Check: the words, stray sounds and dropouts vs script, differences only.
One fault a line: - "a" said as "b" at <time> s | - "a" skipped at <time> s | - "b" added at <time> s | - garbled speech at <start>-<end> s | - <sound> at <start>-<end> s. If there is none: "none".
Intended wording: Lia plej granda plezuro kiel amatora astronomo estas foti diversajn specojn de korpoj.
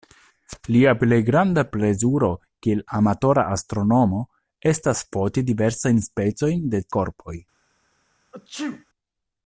- sneeze at 8.3-8.9 s